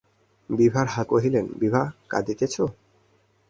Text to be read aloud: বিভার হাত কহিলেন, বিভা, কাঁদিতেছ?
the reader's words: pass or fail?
pass